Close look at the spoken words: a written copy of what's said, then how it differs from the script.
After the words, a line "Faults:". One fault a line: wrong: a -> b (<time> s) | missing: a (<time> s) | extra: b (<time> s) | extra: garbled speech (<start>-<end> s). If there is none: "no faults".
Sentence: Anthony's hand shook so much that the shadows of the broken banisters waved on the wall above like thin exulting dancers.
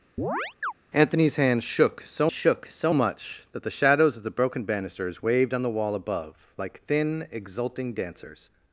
Anthony's hand shook so shook so much that the shadows of the broken banisters waved on the wall above like thin exulting dancers.
Faults:
extra: shook so (2.3 s)